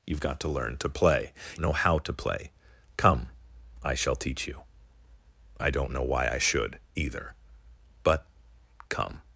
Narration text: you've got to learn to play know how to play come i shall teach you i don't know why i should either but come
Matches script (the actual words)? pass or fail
pass